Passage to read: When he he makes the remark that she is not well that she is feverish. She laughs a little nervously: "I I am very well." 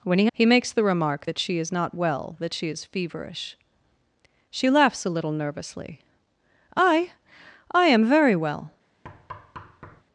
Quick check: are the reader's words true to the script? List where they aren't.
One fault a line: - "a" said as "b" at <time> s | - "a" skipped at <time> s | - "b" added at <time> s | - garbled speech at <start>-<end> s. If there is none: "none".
none